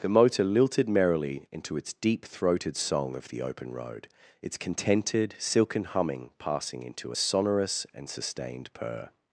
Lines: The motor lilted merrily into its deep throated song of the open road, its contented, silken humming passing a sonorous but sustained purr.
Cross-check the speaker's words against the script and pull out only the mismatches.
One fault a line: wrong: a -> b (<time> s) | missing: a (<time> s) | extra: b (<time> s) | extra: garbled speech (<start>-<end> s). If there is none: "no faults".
extra: into (6.8 s)
wrong: but -> and (7.9 s)